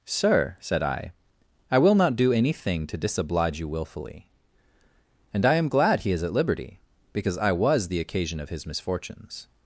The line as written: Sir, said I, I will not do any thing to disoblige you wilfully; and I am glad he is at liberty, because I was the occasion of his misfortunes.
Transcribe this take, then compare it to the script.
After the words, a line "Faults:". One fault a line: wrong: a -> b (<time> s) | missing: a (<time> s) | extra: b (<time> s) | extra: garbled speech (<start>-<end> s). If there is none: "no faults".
Sir, said I, I will not do any thing to disoblige you wilfully; and I am glad he is at liberty, because I was the occasion of his misfortunes.
Faults:
no faults